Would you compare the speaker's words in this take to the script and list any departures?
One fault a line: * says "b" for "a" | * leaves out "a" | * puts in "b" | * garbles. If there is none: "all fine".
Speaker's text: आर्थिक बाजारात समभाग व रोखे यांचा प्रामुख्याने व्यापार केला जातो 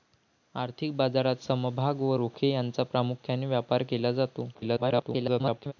* garbles